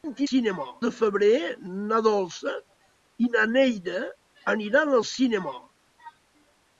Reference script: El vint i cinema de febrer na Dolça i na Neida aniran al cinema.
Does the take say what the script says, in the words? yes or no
yes